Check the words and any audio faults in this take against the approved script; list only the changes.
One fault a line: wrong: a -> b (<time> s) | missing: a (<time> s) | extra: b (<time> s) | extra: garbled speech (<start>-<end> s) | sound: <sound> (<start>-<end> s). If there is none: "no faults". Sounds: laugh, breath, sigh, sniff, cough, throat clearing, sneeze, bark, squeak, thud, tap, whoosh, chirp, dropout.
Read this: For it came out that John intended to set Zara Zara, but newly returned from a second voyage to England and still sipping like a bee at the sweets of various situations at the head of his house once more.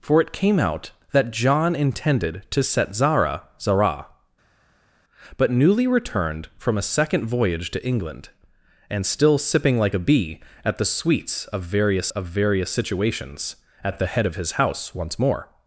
extra: of various (12.1 s)